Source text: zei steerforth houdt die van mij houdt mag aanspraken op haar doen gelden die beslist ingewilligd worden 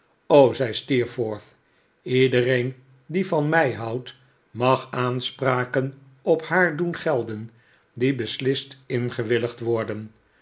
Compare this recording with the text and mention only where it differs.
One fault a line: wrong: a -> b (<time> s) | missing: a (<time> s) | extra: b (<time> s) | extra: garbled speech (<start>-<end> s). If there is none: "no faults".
wrong: houdt -> iedereen (2.0 s)